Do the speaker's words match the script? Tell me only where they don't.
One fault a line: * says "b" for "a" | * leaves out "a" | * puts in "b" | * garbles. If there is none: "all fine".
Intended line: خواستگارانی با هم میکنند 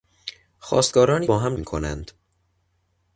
all fine